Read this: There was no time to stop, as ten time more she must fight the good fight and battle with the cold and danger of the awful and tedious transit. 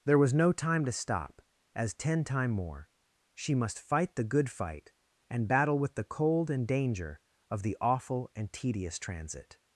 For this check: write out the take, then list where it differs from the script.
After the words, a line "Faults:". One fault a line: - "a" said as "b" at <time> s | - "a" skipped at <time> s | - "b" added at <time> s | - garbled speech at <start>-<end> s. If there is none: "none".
There was no time to stop, as ten time more she must fight the good fight and battle with the cold and danger of the awful and tedious transit.
Faults:
none